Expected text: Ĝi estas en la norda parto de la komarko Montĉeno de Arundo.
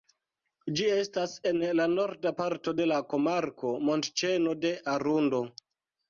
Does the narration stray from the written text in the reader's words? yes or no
no